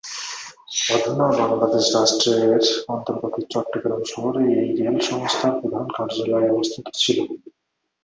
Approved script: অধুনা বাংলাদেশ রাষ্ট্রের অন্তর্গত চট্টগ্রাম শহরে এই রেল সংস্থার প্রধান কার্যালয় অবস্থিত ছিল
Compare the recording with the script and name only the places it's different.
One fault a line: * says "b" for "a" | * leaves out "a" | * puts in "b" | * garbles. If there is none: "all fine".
all fine